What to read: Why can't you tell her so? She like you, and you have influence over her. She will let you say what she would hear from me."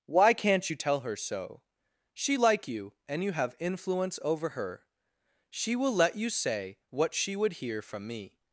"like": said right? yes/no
yes